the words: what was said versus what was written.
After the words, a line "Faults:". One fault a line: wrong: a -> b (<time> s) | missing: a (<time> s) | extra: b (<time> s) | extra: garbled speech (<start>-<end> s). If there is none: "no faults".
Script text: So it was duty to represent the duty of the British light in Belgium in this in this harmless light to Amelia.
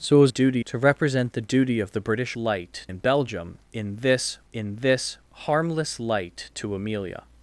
So it was duty to represent the duty of the British light in Belgium in this in this harmless light to Amelia.
Faults:
no faults